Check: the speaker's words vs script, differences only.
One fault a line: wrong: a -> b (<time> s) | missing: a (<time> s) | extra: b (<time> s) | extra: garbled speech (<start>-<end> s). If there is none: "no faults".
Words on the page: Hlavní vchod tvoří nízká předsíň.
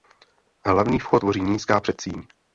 no faults